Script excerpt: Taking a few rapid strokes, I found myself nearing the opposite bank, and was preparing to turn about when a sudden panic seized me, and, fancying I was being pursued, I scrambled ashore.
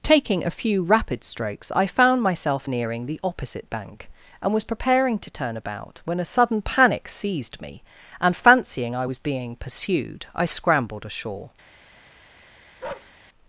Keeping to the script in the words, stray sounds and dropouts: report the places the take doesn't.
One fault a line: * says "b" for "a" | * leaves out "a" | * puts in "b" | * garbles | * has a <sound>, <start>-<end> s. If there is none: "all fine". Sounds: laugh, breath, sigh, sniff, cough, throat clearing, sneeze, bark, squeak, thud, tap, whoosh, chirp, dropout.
* has a bark, 12.8-13.1 s